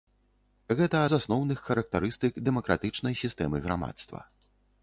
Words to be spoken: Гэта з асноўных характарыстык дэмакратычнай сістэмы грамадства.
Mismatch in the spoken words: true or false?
false